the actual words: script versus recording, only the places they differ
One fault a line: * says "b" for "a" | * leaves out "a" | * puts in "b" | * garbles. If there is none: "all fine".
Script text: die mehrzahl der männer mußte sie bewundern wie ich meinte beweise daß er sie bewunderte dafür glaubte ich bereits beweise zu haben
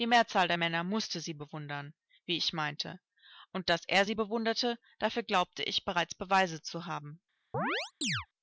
* says "und" for "beweise"